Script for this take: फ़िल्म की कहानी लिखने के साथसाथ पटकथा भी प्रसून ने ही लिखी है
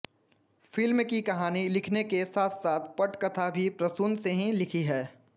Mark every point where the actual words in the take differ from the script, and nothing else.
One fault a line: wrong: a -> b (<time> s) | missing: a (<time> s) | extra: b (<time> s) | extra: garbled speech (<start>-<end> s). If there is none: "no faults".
no faults